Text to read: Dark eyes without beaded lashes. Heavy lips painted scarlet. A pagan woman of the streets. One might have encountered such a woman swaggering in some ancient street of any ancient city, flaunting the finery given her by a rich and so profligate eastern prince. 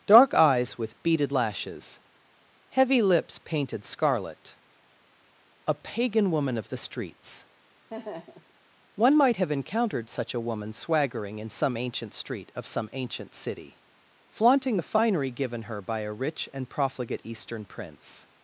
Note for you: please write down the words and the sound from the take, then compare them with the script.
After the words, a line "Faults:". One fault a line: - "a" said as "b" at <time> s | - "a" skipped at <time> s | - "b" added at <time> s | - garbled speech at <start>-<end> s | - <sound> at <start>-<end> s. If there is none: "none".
Dark eyes with beaded lashes. Heavy lips painted scarlet. A pagan woman of the streets. One might have encountered such a woman swaggering in some ancient street of some ancient city, flaunting the finery given her by a rich and profligate eastern prince.
Faults:
- "without" said as "with" at 0.8 s
- laugh at 7.9-8.5 s
- "any" said as "some" at 12.7 s
- "so" skipped at 16.7 s